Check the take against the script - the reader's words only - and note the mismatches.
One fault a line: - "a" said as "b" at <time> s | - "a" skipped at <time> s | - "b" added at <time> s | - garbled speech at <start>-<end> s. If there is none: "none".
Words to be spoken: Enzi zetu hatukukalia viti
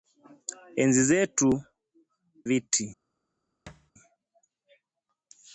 - "hatukukalia" skipped at 1.5 s